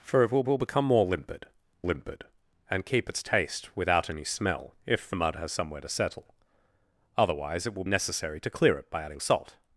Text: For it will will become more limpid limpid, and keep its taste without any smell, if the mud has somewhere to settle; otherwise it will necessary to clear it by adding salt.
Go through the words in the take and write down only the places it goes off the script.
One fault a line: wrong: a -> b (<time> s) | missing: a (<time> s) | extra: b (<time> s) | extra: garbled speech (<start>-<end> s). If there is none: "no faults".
no faults